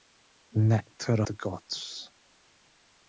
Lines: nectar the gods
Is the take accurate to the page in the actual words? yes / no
yes